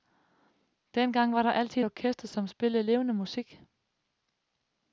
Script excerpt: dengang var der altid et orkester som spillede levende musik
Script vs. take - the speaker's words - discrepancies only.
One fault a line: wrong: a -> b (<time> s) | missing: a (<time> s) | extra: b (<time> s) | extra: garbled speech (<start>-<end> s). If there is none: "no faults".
no faults